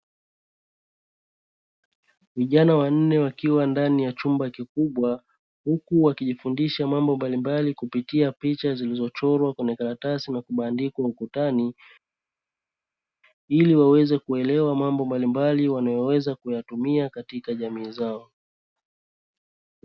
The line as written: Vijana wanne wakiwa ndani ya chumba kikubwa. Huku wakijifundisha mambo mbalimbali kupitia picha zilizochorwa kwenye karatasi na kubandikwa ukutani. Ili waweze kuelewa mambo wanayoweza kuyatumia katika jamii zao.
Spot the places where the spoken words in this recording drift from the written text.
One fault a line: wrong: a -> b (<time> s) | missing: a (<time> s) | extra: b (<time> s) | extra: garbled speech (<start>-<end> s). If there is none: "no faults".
extra: mbalimbali (15.1 s)